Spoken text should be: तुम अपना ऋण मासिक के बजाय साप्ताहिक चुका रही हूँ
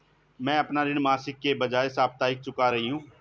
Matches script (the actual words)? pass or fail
fail